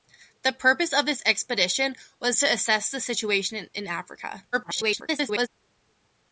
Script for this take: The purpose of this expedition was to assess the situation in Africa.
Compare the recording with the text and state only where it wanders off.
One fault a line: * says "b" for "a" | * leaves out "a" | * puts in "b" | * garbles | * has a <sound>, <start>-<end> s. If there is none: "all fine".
* garbles